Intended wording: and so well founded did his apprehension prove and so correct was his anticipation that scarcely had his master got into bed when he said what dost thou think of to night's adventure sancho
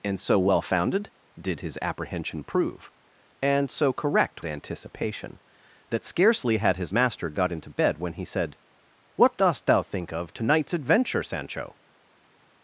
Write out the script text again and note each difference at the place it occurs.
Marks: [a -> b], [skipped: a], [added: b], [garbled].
and so well founded did his apprehension prove and so correct [skipped: was his] anticipation that scarcely had his master got into bed when he said what dost thou think of to night's adventure sancho